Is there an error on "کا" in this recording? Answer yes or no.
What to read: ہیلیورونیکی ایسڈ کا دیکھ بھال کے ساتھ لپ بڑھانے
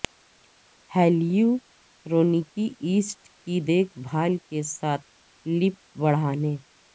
yes